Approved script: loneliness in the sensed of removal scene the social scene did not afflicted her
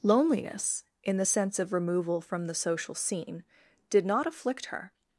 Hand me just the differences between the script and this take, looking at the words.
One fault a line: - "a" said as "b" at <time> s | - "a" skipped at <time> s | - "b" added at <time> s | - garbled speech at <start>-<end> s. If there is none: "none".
- "sensed" said as "sense" at 1.2 s
- "scene" said as "from" at 2.2 s
- "afflicted" said as "afflict" at 4.3 s